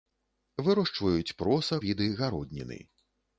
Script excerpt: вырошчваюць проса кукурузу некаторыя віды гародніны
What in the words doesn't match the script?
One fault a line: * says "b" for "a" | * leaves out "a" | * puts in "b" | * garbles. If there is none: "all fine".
* leaves out "кукурузу некаторыя"